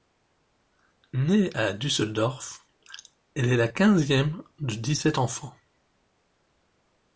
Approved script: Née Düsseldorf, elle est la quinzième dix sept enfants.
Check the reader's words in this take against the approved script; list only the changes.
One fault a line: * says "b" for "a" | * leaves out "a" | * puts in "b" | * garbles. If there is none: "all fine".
* puts in "à"
* puts in "de"